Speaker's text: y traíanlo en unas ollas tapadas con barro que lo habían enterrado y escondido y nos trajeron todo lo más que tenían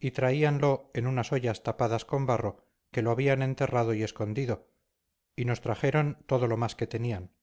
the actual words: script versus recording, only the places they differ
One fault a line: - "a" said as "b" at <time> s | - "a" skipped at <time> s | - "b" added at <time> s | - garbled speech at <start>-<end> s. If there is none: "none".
none